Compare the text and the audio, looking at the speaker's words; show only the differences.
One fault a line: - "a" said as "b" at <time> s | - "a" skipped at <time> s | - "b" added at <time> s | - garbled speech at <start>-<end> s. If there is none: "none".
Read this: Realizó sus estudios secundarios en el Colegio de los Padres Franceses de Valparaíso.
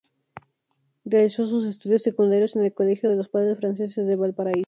none